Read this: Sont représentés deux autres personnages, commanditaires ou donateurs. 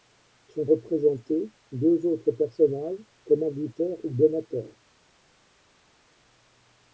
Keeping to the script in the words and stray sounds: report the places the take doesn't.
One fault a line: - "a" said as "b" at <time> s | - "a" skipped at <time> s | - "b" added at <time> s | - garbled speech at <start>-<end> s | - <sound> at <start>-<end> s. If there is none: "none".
none